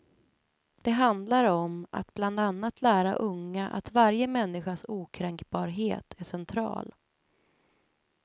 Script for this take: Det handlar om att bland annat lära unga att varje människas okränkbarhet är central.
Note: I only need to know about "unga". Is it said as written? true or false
true